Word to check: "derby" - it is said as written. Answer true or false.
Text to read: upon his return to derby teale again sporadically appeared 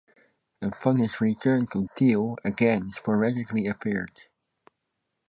false